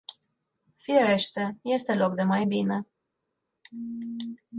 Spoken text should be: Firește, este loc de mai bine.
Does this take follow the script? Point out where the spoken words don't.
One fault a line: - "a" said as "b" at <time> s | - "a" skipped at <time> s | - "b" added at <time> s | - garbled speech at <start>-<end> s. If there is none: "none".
none